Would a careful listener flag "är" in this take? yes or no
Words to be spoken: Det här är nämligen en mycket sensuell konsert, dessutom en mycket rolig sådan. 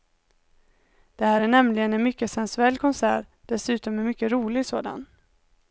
no